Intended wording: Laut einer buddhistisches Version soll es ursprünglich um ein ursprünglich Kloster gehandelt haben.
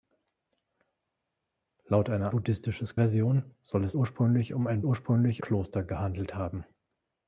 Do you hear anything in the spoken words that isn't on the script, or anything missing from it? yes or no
no